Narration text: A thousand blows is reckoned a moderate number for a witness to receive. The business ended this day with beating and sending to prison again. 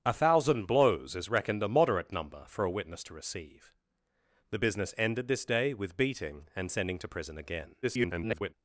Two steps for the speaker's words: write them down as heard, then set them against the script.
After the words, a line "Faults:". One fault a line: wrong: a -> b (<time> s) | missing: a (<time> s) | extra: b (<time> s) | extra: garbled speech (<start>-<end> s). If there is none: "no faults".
A thousand blows is reckoned a moderate number for a witness to receive. The business ended this day with beating and sending to prison again. [garbled]
Faults:
extra: garbled speech (7.8-8.5 s)